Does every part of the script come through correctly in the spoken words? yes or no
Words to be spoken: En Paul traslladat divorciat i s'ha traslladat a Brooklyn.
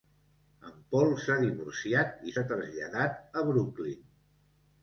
no